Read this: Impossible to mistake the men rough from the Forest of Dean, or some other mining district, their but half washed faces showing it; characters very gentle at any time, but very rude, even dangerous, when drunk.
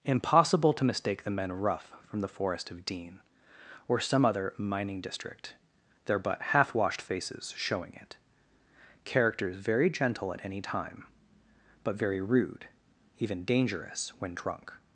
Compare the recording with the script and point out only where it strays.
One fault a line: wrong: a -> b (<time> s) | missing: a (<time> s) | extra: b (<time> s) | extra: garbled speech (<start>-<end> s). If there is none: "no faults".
no faults